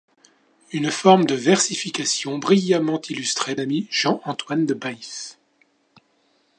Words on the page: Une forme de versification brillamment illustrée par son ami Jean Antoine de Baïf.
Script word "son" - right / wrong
wrong